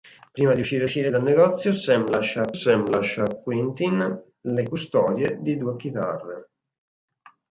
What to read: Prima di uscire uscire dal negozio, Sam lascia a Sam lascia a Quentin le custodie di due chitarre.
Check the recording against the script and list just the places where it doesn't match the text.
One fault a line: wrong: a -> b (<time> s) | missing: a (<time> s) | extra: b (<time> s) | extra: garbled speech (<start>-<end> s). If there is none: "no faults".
no faults